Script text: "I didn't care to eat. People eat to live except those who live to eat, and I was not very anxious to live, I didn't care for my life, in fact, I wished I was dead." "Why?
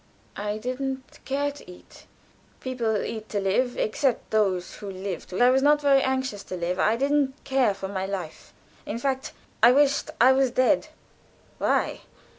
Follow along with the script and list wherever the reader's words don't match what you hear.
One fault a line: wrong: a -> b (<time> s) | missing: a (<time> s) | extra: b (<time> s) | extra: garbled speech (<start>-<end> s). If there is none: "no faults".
missing: eat and (5.4 s)